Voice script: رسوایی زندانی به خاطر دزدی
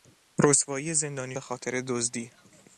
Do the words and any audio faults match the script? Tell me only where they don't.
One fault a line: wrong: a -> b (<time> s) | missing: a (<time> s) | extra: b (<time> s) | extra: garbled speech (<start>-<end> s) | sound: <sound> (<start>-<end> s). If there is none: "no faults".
no faults